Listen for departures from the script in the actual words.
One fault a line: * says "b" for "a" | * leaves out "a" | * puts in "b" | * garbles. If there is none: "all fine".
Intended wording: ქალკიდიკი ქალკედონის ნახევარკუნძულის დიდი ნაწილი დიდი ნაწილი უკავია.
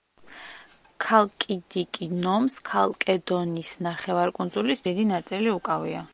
* puts in "ნომს"
* leaves out "დიდი ნაწილი"